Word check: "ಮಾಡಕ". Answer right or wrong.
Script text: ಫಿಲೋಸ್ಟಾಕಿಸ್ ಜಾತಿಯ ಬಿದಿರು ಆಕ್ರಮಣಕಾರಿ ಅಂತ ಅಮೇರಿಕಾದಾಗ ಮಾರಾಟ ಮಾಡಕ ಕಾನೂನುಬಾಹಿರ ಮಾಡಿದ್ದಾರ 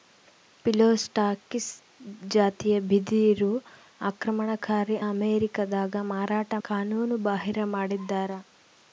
wrong